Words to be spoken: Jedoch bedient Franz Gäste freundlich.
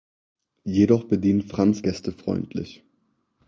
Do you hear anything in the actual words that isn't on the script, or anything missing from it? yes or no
no